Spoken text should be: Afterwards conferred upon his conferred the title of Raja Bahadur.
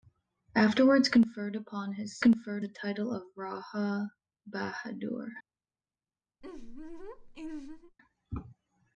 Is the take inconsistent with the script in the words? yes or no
no